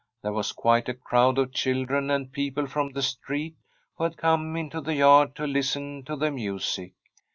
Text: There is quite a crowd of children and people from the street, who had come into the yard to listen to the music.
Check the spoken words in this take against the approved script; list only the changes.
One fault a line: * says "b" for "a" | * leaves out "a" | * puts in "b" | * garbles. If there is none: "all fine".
* says "was" for "is"